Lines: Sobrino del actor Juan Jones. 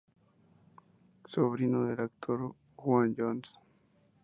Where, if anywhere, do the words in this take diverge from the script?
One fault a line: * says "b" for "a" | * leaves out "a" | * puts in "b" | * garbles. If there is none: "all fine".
all fine